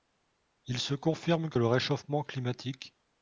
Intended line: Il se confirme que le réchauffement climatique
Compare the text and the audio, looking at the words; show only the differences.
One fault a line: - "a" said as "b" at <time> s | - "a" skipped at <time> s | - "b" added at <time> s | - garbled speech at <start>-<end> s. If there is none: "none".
none